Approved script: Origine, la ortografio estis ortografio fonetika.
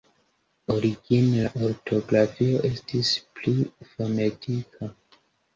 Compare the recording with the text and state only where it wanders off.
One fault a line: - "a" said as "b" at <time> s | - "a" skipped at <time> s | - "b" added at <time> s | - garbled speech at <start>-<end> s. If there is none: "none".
- "ortografio" said as "pli" at 3.4 s